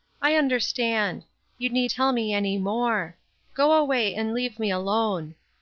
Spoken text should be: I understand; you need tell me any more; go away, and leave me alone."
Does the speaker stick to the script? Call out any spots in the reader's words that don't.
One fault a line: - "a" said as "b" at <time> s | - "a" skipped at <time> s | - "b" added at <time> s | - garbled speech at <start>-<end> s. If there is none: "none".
none